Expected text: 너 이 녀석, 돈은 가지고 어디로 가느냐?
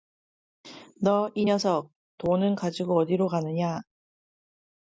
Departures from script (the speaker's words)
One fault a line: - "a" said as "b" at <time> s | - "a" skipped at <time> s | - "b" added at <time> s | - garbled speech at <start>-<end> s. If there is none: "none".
none